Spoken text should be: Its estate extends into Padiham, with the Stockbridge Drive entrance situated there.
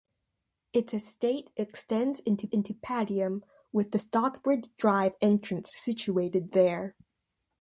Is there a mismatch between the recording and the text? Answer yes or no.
yes